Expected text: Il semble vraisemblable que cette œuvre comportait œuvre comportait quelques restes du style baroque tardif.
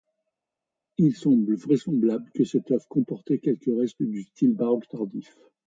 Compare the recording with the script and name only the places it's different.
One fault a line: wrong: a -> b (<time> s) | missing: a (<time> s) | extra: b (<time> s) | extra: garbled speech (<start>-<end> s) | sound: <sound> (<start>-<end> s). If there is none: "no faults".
missing: œuvre comportait (3.4 s)